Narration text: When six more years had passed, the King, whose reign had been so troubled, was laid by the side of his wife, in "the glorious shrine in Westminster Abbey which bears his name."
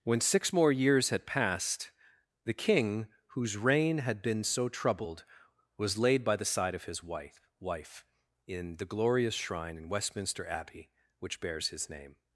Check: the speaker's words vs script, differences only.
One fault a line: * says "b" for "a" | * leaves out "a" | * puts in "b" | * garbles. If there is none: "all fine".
* puts in "wife"